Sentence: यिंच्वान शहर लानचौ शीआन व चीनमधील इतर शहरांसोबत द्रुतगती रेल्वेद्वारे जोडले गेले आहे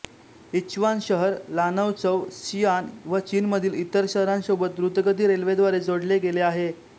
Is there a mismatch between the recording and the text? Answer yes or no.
no